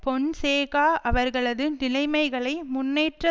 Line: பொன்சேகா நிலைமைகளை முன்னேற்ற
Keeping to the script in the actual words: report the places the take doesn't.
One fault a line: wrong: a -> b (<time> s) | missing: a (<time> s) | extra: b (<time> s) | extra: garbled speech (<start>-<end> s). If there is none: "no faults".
extra: அவர்களது (1.0 s)